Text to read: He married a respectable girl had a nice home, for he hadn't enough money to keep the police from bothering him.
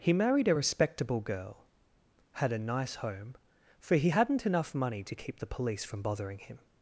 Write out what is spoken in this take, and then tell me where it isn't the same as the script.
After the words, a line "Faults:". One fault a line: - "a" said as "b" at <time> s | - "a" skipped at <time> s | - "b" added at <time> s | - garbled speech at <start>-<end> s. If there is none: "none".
He married a respectable girl had a nice home, for he hadn't enough money to keep the police from bothering him.
Faults:
none